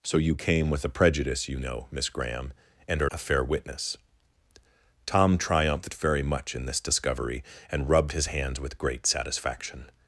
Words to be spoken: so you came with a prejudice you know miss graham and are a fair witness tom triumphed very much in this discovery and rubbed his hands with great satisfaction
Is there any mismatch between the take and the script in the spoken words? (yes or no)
no